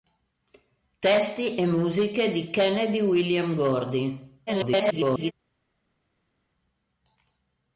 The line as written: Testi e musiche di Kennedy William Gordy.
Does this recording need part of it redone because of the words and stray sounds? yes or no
yes